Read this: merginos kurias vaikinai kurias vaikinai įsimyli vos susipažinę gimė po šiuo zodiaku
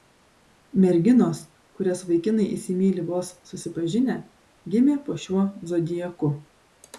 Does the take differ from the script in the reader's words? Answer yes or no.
yes